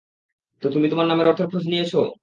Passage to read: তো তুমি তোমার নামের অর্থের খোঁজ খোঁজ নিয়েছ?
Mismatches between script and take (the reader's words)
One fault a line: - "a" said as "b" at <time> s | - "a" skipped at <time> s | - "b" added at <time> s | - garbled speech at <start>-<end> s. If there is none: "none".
- "খোঁজ" skipped at 1.6 s